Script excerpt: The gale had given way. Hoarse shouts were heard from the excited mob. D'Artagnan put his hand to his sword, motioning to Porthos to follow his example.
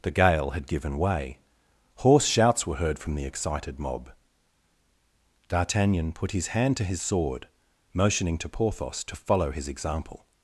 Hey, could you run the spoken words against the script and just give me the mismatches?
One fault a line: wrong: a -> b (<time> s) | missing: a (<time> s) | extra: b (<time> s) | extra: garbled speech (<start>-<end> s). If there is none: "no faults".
no faults